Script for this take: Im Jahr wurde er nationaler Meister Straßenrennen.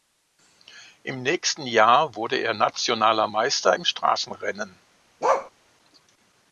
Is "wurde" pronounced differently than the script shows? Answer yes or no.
no